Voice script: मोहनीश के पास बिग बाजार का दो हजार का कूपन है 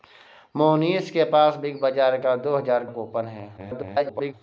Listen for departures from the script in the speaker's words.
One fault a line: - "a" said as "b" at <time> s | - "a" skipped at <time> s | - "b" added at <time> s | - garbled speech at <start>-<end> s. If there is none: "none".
- "का" skipped at 2.9 s
- garbled speech at 3.6-4.3 s